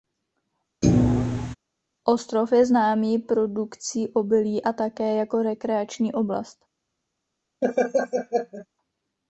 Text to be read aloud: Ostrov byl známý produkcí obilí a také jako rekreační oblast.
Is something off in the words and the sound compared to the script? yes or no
yes